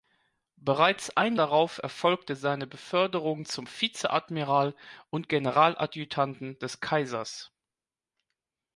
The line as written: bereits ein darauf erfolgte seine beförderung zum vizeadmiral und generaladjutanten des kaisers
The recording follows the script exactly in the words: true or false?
true